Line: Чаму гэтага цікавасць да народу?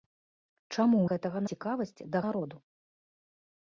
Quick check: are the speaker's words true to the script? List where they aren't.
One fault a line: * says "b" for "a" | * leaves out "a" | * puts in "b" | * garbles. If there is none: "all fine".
all fine